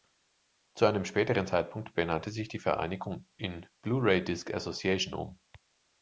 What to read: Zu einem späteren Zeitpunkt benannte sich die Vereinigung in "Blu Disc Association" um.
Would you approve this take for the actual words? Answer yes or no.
no